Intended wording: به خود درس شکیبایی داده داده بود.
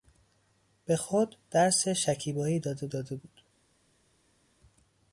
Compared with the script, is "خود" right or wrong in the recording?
right